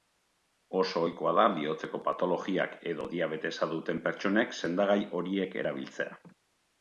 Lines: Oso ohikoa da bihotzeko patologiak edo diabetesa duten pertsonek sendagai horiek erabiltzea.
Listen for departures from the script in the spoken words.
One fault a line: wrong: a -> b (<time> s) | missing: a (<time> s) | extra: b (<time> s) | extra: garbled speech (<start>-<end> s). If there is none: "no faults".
no faults